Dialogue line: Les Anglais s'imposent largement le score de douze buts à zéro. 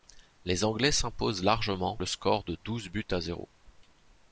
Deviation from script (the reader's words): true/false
false